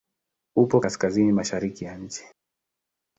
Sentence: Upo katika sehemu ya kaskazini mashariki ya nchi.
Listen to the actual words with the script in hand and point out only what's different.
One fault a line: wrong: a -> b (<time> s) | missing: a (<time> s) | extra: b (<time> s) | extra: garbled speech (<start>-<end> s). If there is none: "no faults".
missing: katika sehemu ya (0.8 s)